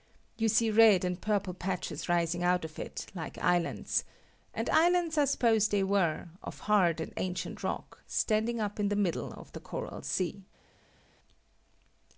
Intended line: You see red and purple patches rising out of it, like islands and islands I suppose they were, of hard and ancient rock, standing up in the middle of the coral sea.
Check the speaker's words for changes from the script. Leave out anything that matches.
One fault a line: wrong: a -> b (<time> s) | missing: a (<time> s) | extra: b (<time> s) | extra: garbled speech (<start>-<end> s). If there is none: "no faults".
no faults